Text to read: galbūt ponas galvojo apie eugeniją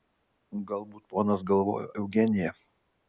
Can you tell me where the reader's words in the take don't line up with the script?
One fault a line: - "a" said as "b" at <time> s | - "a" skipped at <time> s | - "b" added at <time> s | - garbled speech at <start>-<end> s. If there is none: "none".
- "apie" skipped at 1.9 s